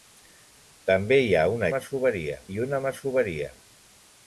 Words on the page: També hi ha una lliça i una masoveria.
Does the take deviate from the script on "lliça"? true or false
true